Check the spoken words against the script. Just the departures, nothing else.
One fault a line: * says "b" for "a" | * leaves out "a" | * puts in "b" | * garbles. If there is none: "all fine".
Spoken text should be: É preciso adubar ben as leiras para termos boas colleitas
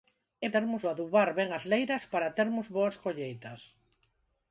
* says "termos" for "preciso"